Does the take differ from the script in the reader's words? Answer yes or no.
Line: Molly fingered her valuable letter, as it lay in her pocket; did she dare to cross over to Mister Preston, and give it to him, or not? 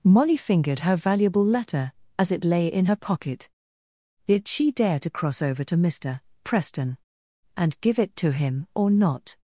no